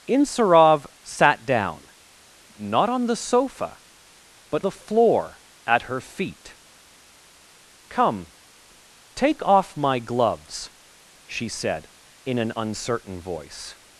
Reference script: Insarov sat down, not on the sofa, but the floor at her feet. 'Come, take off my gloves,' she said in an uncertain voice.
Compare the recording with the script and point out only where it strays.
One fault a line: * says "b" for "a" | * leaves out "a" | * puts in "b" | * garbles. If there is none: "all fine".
all fine